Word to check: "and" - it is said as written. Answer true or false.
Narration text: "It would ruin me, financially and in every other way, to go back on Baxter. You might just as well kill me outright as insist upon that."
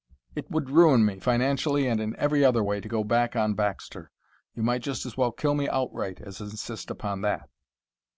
true